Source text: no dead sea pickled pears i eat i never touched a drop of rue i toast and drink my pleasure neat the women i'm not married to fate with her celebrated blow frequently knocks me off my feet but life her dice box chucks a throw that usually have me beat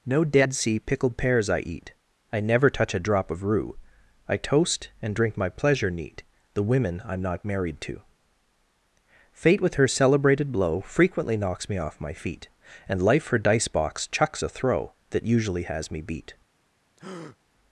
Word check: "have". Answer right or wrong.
wrong